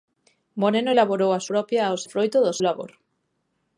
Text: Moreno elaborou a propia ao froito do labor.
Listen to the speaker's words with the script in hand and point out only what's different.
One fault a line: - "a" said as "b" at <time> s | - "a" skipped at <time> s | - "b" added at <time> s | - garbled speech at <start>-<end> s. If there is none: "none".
none